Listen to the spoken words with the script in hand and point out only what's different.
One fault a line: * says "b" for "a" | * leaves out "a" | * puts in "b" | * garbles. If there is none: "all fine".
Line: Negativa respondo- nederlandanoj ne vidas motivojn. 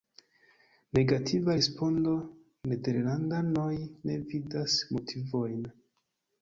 all fine